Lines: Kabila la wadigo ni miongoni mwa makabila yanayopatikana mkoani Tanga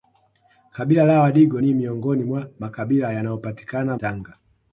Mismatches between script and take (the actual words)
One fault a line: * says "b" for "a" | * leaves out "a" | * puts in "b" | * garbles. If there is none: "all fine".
* leaves out "mkoani"